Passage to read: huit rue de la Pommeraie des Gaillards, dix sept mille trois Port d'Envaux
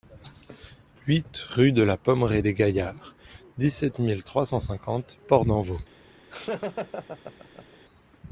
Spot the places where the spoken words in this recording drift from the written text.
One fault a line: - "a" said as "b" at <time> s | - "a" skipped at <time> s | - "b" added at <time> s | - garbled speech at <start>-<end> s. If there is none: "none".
- "cent cinquante" added at 4.5 s